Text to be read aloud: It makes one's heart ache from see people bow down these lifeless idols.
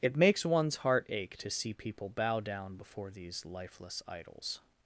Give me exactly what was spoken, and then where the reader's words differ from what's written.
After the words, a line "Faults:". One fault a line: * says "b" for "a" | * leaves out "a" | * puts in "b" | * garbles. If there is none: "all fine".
It makes one's heart ache to see people bow down before these lifeless idols.
Faults:
* says "to" for "from"
* puts in "before"